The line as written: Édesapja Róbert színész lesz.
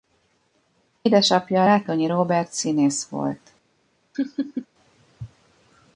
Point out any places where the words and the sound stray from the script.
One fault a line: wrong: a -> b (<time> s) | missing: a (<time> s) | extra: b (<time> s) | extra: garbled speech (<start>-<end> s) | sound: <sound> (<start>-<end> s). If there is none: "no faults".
extra: Rátonyi (1.6 s)
wrong: lesz -> volt (3.1 s)
sound: laugh (4.1-4.7 s)